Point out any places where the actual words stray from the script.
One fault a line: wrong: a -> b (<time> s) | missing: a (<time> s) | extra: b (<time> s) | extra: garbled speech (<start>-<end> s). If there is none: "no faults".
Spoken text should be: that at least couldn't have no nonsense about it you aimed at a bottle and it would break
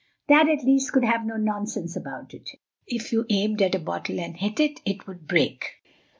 wrong: couldn't -> could (0.9 s)
extra: if (2.9 s)
extra: hit it (4.3 s)